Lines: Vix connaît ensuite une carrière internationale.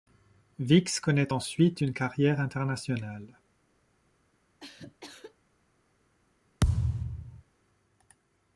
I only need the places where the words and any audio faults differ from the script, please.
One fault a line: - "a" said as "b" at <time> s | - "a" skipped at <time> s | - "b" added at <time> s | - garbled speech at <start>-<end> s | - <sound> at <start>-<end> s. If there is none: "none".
- cough at 4.6-5.4 s
- thud at 6.6-7.4 s